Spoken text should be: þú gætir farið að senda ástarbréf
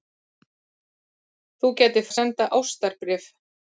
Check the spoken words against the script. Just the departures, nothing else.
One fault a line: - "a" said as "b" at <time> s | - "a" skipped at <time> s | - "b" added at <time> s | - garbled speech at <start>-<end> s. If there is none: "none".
- "farið" skipped at 2.1 s